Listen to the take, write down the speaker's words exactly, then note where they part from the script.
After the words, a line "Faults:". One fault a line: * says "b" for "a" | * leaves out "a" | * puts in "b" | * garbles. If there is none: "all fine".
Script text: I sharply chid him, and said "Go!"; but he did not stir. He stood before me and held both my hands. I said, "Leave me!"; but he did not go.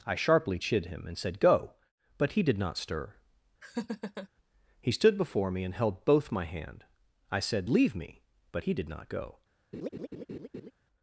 I sharply chid him, and said "Go!"; but he did not stir. He stood before me and held both my hand. I said, "Leave me!"; but he did not go.
Faults:
* says "hand" for "hands"